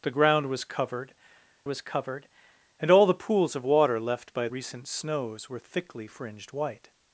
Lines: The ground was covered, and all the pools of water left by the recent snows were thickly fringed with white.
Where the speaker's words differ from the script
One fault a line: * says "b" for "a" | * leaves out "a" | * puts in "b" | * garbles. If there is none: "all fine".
* puts in "was covered"
* leaves out "the"
* leaves out "with"